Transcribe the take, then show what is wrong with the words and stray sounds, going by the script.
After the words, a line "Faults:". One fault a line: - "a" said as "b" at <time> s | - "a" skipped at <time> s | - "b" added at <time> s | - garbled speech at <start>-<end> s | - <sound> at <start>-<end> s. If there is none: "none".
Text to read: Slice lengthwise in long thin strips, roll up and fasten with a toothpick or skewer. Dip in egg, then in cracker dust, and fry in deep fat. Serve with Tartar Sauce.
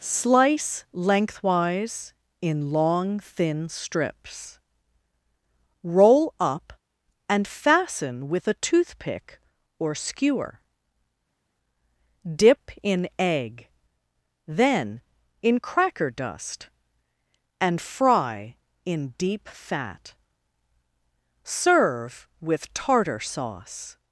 Slice lengthwise in long thin strips, roll up and fasten with a toothpick or skewer. Dip in egg, then in cracker dust, and fry in deep fat. Serve with Tartar Sauce.
Faults:
none